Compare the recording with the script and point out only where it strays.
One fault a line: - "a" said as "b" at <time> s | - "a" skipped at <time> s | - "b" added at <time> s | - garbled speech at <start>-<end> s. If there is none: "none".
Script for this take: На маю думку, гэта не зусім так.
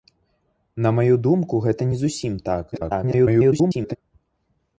- garbled speech at 2.7-4.0 s